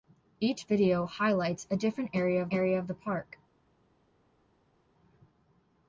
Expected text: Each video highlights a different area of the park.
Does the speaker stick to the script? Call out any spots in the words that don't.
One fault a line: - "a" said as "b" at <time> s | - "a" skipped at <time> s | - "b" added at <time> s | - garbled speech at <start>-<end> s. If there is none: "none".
- "area of" added at 2.5 s